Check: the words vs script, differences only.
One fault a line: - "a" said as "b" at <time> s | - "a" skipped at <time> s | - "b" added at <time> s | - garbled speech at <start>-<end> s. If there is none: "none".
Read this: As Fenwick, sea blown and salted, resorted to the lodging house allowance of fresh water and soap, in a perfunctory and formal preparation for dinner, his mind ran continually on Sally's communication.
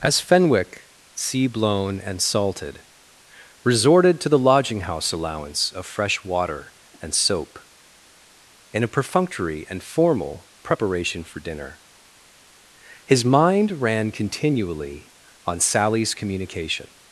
none